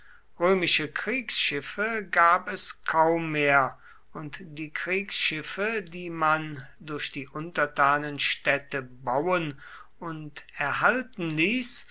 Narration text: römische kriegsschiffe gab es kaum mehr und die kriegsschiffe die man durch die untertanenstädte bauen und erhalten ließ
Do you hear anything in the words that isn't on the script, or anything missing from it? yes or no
no